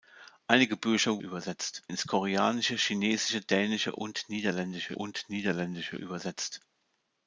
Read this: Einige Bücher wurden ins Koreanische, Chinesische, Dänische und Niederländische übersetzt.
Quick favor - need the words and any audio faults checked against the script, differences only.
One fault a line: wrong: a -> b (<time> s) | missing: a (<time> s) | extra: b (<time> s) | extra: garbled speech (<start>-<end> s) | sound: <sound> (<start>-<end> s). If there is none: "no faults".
wrong: wurden -> übersetzt (1.2 s)
extra: und Niederländische (4.9 s)